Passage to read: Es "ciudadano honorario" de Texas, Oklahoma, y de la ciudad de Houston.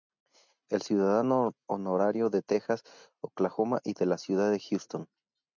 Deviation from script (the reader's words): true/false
false